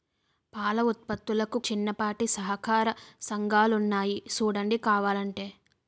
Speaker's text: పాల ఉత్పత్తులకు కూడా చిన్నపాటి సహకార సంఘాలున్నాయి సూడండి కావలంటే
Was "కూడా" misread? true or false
true